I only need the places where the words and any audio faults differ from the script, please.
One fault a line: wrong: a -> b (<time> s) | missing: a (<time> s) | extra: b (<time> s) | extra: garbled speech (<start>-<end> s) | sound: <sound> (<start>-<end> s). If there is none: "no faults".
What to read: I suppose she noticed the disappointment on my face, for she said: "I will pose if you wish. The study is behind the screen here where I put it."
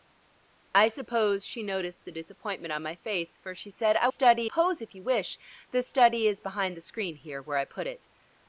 wrong: will -> study (4.1 s)